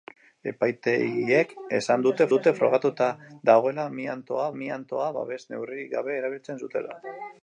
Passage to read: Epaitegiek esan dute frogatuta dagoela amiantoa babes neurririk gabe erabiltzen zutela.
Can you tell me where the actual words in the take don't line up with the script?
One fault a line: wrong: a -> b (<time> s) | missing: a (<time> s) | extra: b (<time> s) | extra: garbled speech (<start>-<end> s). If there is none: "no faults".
extra: dute (2.3 s)
extra: amiantoa (4.6 s)